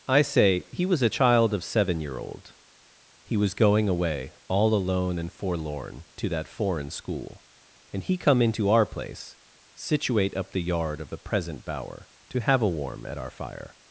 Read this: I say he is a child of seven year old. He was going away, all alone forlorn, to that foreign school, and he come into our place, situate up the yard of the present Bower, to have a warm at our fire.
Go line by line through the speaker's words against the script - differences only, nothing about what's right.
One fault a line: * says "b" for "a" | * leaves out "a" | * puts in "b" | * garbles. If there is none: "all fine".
* says "was" for "is"
* puts in "and"